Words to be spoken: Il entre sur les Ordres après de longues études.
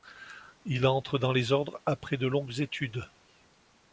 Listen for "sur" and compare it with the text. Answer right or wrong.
wrong